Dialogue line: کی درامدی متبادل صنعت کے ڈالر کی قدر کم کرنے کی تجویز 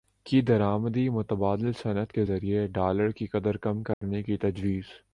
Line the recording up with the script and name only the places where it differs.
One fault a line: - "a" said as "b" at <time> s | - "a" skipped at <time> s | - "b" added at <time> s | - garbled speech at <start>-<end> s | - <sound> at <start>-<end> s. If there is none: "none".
- "ذریعے" added at 2.2 s
- dropout at 3.9-4.0 s